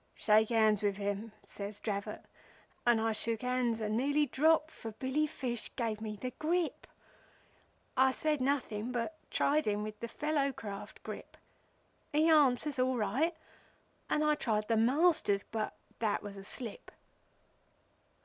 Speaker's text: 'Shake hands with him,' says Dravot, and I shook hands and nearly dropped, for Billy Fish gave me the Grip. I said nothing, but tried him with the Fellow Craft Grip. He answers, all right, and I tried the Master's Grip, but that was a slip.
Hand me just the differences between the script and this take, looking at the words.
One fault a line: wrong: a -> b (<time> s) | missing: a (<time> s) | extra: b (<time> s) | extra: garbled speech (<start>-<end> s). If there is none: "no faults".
missing: Grip (15.4 s)